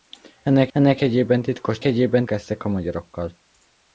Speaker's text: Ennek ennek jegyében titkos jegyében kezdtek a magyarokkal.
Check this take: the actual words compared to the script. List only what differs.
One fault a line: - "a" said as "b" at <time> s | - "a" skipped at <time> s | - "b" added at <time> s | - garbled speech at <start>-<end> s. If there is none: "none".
none